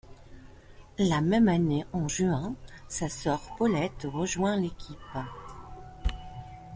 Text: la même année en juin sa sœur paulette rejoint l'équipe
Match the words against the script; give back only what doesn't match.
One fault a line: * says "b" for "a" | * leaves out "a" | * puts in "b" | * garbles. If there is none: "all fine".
all fine